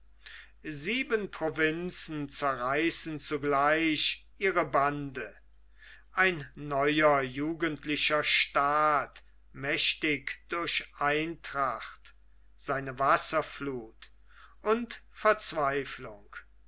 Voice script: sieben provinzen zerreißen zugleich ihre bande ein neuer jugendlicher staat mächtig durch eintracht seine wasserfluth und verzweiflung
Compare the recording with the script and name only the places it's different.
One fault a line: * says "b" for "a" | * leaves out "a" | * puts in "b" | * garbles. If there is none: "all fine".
all fine